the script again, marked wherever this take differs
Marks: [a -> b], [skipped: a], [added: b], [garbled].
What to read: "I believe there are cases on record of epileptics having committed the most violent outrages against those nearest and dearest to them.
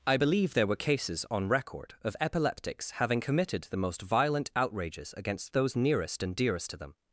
"I believe there [are -> were] cases on record of epileptics having committed the most violent outrages against those nearest and dearest to them.